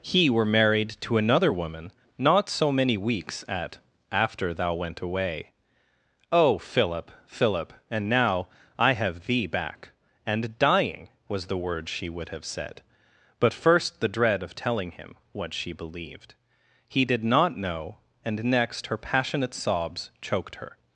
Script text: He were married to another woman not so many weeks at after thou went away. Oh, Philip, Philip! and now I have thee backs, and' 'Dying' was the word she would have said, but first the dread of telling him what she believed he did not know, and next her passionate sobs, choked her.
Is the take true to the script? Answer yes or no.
no